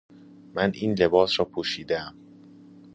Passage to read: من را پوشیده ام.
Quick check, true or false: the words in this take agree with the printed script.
false